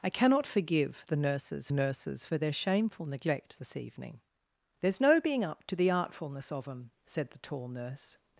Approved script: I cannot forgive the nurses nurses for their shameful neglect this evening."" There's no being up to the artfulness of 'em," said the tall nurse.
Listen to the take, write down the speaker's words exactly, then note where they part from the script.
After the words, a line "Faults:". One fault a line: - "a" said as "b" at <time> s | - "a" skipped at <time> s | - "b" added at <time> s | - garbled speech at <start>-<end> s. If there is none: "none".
I cannot forgive the nurses nurses for their shameful neglect this evening."" There's no being up to the artfulness of 'em," said the tall nurse.
Faults:
none